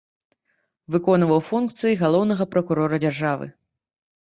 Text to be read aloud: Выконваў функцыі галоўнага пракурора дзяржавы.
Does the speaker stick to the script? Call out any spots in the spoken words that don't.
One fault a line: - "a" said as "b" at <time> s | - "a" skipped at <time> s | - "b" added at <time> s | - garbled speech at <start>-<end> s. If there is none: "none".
none